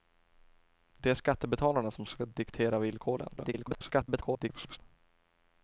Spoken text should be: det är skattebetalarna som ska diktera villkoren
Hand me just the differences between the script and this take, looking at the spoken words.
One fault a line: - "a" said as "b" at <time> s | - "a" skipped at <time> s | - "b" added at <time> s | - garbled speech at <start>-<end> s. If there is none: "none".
- garbled speech at 3.4-4.8 s